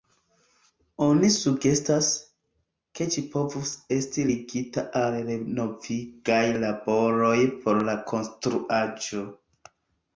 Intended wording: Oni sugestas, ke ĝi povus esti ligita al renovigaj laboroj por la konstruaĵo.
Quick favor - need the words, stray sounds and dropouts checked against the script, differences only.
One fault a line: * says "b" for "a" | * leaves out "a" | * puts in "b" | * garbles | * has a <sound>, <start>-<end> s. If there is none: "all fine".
all fine